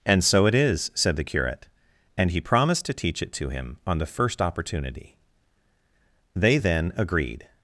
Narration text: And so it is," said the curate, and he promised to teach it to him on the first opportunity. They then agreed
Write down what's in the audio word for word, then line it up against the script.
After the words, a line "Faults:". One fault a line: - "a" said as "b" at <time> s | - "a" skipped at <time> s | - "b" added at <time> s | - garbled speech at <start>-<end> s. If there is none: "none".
And so it is," said the curate, and he promised to teach it to him on the first opportunity. They then agreed
Faults:
none